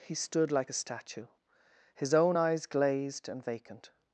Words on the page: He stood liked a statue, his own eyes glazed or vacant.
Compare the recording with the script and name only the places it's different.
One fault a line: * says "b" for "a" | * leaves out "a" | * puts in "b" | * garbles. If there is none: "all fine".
* says "like" for "liked"
* says "and" for "or"